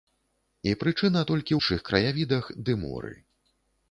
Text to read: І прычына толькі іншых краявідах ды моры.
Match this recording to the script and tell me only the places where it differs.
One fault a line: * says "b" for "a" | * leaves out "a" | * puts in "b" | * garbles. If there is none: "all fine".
all fine